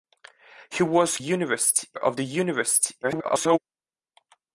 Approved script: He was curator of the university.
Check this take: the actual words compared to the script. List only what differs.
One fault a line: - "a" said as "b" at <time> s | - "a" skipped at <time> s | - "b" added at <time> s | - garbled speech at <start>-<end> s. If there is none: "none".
- "curator" said as "university" at 1.2 s
- garbled speech at 3.0-3.6 s